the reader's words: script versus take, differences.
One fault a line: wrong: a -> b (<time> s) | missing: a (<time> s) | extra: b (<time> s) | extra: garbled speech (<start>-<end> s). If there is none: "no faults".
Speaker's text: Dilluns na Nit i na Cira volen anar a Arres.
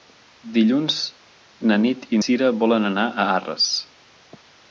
missing: na (2.2 s)